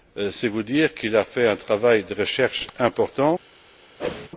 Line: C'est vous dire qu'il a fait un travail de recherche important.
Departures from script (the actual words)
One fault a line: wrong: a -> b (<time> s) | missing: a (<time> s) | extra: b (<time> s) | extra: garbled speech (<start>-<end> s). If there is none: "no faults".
no faults